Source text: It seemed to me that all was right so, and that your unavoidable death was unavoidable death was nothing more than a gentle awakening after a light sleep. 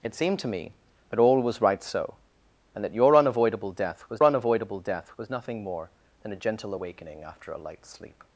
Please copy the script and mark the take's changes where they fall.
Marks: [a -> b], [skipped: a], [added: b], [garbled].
It seemed to me that all was right so, and that your unavoidable death was unavoidable death was nothing more than a gentle awakening after a light sleep.